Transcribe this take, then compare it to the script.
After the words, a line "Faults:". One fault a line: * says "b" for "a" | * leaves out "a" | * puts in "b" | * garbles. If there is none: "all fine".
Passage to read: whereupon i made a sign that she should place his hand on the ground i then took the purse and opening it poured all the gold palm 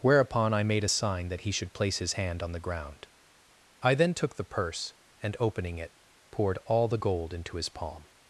whereupon i made a sign that he should place his hand on the ground i then took the purse and opening it poured all the gold into his palm
Faults:
* says "he" for "she"
* puts in "into his"